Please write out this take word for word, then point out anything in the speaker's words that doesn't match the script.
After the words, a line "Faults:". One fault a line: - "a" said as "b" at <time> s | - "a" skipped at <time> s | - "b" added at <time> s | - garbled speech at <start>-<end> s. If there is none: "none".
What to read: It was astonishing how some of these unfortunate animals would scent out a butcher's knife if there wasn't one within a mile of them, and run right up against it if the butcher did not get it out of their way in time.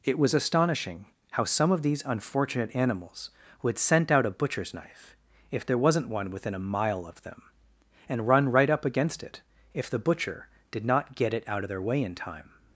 It was astonishing how some of these unfortunate animals would scent out a butcher's knife if there wasn't one within a mile of them, and run right up against it if the butcher did not get it out of their way in time.
Faults:
none